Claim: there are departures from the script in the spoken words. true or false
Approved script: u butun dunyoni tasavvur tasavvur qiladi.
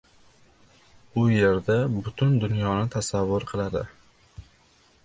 true